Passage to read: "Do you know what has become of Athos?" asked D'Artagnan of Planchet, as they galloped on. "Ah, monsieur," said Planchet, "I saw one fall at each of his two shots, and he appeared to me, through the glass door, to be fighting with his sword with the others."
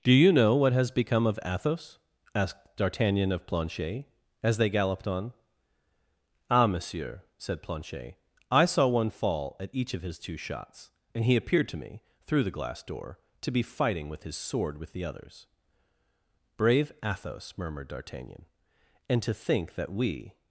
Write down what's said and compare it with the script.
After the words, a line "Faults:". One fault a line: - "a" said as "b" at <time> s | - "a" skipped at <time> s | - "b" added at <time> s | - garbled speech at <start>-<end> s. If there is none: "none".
"Do you know what has become of Athos?" asked D'Artagnan of Planchet, as they galloped on. "Ah, monsieur," said Planchet, "I saw one fall at each of his two shots, and he appeared to me, through the glass door, to be fighting with his sword with the others." "Brave Athos!" murmured D'Artagnan, "and to think that we
Faults:
- "Brave Athos murmured D'Artagnan and to think that we" added at 16.6 s